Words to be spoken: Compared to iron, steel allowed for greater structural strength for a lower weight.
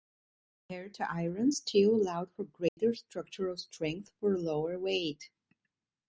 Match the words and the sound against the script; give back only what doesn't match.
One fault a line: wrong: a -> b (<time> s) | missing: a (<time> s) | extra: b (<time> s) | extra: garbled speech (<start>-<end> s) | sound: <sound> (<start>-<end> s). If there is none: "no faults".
sound: dropout (2.7-2.8 s)